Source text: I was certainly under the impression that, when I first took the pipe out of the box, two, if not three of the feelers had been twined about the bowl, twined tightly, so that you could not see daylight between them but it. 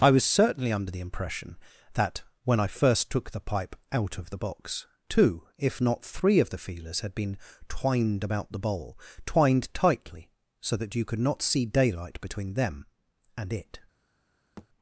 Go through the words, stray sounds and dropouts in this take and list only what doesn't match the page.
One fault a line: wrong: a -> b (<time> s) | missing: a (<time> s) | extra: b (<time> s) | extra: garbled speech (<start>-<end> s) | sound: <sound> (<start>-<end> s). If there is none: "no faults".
wrong: but -> and (13.4 s)
sound: thud (14.6-14.7 s)